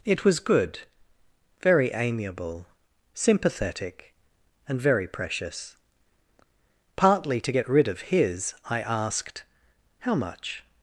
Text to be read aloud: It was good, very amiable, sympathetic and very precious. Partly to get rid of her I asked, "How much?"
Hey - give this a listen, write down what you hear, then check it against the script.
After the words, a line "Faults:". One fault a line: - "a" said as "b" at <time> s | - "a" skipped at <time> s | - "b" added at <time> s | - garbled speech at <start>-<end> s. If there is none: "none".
It was good, very amiable, sympathetic and very precious. Partly to get rid of his I asked, "How much?"
Faults:
- "her" said as "his" at 8.0 s